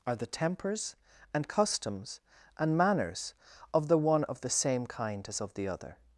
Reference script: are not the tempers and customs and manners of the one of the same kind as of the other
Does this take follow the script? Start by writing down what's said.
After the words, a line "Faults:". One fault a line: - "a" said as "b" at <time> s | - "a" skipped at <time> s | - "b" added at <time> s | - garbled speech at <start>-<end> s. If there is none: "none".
are the tempers and customs and manners of the one of the same kind as of the other
Faults:
- "not" skipped at 0.1 s